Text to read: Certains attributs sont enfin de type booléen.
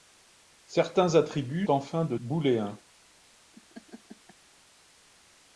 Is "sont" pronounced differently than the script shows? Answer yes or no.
yes